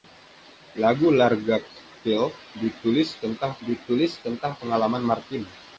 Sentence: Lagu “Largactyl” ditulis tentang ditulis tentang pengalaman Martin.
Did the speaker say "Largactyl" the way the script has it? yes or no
yes